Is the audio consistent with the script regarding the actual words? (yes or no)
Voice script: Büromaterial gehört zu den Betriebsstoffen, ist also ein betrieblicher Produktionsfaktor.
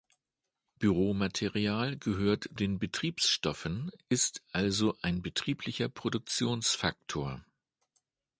no